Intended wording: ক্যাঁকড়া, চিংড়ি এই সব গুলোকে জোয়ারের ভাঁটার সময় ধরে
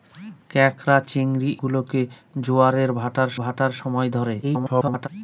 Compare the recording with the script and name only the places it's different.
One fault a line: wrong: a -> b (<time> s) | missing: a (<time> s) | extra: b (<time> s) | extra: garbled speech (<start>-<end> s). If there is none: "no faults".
missing: এই সব (1.5 s)
extra: ভাঁটার (3.4 s)
extra: garbled speech (4.4-5.1 s)